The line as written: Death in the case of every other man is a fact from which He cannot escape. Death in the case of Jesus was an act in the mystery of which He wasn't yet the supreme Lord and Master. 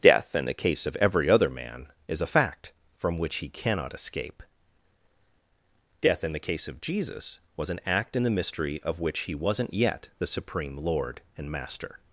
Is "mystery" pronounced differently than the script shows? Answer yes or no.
no